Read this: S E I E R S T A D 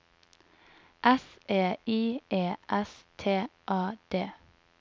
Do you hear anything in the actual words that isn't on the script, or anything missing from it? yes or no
yes